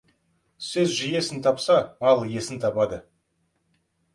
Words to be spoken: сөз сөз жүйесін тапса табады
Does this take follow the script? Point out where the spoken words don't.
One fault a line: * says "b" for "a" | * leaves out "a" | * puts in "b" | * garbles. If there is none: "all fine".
* leaves out "сөз"
* puts in "мал иесін"